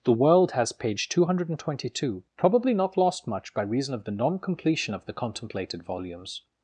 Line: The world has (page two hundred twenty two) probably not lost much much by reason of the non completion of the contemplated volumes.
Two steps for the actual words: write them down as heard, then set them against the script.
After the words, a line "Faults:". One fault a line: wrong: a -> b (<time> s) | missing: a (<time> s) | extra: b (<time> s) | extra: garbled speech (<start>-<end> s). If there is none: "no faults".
The world has (page two hundred twenty two) probably not lost much by reason of the non completion of the contemplated volumes.
Faults:
missing: much (3.5 s)